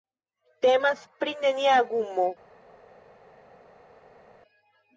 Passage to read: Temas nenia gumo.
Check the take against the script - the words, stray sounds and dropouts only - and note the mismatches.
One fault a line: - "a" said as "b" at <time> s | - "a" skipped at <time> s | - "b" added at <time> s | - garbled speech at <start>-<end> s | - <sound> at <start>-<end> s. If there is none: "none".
- "pri" added at 1.2 s